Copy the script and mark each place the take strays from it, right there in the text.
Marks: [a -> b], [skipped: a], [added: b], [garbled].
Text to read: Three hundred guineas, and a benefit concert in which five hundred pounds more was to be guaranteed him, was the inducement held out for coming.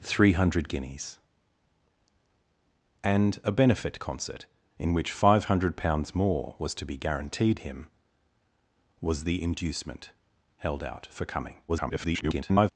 Three hundred guineas, and a benefit concert in which five hundred pounds more was to be guaranteed him, was the inducement held out for coming. [garbled]